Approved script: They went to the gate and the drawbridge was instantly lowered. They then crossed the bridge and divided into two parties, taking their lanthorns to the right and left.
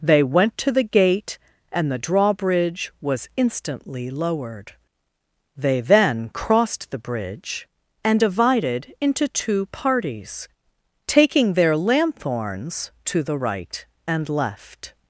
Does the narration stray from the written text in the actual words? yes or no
no